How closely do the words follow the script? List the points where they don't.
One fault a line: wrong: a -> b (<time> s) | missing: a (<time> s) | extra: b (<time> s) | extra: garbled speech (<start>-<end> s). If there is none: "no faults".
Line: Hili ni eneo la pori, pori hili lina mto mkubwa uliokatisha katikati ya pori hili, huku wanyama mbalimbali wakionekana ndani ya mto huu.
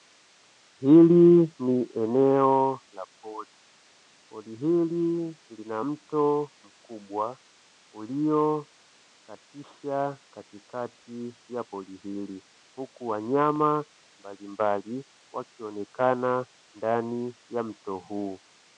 no faults